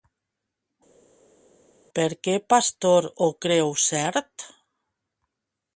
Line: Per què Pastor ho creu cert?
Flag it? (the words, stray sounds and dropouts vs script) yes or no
no